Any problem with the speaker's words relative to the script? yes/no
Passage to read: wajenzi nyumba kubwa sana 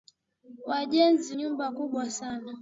no